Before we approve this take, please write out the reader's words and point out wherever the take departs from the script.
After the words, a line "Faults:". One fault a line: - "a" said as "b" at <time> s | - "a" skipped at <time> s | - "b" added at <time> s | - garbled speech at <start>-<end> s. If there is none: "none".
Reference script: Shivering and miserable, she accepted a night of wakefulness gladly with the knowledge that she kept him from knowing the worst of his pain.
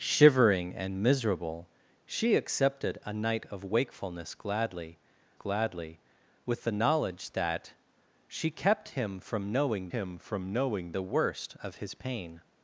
Shivering and miserable, she accepted a night of wakefulness gladly gladly with the knowledge that she kept him from knowing him from knowing the worst of his pain.
Faults:
- "gladly" added at 5.3 s
- "him from knowing" added at 9.9 s